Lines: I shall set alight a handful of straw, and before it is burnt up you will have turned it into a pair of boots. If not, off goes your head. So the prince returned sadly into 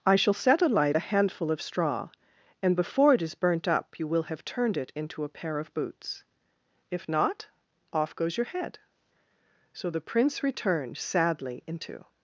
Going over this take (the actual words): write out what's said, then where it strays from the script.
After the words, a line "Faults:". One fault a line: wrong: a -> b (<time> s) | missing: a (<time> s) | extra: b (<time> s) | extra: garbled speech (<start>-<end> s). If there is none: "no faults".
I shall set alight a handful of straw, and before it is burnt up you will have turned it into a pair of boots. If not, off goes your head. So the prince returned sadly into
Faults:
no faults